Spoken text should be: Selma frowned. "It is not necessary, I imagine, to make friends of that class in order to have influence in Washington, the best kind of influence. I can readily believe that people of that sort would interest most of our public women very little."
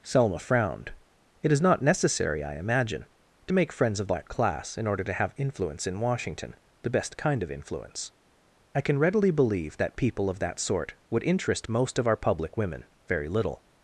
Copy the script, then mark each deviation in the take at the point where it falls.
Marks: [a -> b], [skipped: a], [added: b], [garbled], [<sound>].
Selma frowned. "It is not necessary, I imagine, to make friends of that class in order to have influence in Washington, the best kind of influence. I can readily believe that people of that sort would interest most of our public women very little."